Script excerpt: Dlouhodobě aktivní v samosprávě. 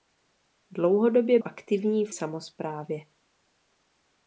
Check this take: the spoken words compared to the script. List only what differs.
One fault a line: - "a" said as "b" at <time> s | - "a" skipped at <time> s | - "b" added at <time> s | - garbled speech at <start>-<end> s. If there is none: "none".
none